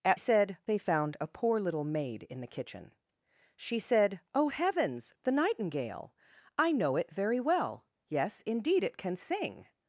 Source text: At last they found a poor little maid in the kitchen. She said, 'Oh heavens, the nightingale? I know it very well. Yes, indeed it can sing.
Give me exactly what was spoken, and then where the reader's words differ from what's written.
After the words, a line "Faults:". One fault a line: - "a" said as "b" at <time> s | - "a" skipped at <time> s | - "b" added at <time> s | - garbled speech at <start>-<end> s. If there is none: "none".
At said they found a poor little maid in the kitchen. She said, 'Oh heavens, the nightingale? I know it very well. Yes, indeed it can sing.
Faults:
- "last" said as "said" at 0.2 s